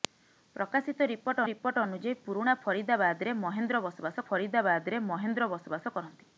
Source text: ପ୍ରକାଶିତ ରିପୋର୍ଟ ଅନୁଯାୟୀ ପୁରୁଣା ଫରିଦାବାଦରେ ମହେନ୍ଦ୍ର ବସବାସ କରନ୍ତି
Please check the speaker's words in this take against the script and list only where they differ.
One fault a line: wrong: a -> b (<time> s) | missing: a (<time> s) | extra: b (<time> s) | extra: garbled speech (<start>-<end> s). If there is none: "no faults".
extra: ରିପୋର୍ଟ (1.5 s)
extra: ଫରିଦାବାଦରେ ମହେନ୍ଦ୍ର ବସବାସ (4.3 s)